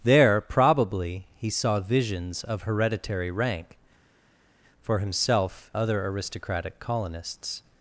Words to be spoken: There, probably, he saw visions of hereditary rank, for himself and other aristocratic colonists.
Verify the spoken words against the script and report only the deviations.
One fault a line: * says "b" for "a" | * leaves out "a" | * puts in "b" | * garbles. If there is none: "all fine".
* leaves out "and"